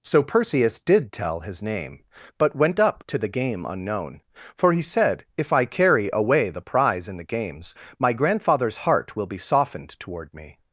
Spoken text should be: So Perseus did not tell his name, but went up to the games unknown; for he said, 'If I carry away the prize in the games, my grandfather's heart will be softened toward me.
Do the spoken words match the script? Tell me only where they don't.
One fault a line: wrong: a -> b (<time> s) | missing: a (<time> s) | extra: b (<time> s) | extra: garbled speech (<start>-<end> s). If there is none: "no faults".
missing: not (1.1 s)
wrong: games -> game (3.3 s)